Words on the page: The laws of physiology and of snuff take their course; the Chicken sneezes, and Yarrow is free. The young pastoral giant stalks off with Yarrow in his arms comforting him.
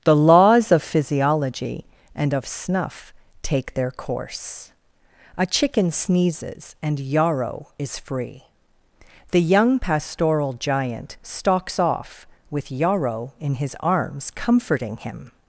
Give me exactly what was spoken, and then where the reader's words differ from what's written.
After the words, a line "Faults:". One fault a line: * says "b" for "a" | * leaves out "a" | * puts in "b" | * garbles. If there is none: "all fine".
The laws of physiology and of snuff take their course; a Chicken sneezes, and Yarrow is free. The young pastoral giant stalks off with Yarrow in his arms comforting him.
Faults:
* says "a" for "the"